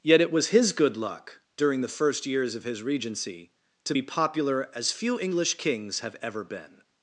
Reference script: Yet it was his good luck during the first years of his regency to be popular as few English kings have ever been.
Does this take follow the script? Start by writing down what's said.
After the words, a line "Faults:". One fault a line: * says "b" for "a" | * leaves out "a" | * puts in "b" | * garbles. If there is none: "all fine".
Yet it was his good luck during the first years of his regency to be popular as few English kings have ever been.
Faults:
all fine